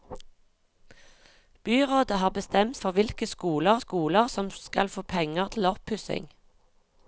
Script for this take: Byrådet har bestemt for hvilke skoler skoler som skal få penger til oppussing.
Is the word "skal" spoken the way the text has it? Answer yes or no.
yes